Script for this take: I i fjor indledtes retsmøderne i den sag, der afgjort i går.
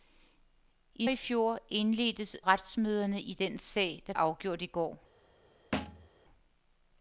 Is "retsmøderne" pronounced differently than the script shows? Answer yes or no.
no